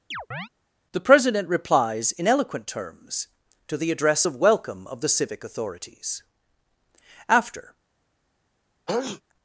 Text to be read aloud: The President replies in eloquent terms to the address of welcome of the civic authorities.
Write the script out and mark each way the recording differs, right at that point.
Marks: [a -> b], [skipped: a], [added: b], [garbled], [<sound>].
[chirp] The President replies in eloquent terms to the address of welcome of the civic authorities. [added: After] [sneeze]